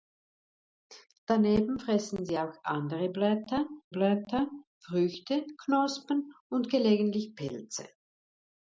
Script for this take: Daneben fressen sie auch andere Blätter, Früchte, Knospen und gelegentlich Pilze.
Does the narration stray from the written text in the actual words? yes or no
yes